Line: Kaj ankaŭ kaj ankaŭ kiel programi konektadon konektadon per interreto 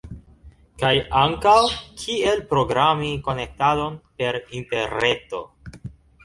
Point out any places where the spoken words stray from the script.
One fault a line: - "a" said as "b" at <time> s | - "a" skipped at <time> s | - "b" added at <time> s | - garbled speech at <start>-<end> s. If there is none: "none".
- "kaj ankaŭ" skipped at 1.5 s
- "konektadon" skipped at 4.0 s